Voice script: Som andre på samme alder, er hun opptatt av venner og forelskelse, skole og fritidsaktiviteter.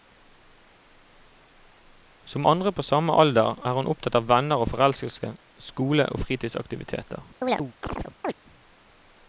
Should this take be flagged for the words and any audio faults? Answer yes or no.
yes